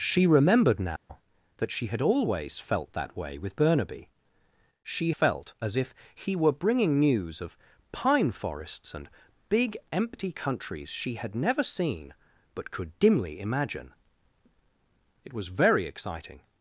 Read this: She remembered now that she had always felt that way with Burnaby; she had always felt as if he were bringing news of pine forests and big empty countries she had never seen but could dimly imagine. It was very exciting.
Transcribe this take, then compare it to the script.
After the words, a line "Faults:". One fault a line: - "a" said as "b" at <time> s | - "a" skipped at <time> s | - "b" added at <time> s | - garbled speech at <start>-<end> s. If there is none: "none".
She remembered now that she had always felt that way with Burnaby; she felt as if he were bringing news of pine forests and big empty countries she had never seen but could dimly imagine. It was very exciting.
Faults:
- "had always" skipped at 5.1 s